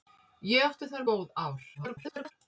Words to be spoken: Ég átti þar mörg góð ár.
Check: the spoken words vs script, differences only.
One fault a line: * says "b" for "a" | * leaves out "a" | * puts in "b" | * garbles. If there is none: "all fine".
* leaves out "mörg"
* garbles